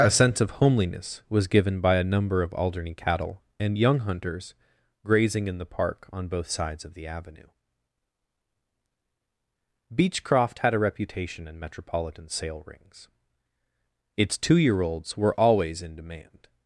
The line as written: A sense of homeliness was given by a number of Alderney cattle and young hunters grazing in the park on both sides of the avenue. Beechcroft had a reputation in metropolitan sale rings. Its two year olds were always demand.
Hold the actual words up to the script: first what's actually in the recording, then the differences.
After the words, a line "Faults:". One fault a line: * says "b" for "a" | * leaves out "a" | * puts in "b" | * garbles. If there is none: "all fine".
A sense of homeliness was given by a number of Alderney cattle and young hunters grazing in the park on both sides of the avenue. Beechcroft had a reputation in metropolitan sale rings. Its two year olds were always in demand.
Faults:
* puts in "in"